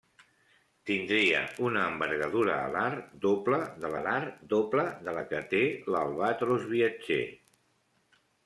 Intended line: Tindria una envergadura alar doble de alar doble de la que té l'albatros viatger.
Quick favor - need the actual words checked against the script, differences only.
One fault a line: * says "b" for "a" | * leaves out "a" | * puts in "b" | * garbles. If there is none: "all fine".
all fine